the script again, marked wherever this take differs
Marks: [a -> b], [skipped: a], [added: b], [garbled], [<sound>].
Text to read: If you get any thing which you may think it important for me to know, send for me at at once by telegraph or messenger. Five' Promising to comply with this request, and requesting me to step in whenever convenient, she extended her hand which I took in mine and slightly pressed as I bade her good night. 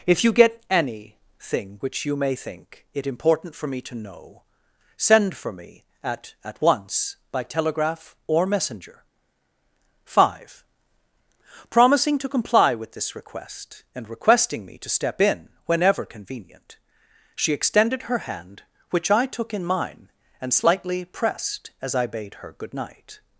If you get any thing which you may think it important for me to know, send for me at at once by telegraph or messenger. Five' Promising to comply with this request, and requesting me to step in whenever convenient, she extended her hand which I took in mine and slightly pressed as I bade her good night.